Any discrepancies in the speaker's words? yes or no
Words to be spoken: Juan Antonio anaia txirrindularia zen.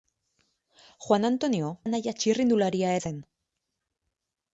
no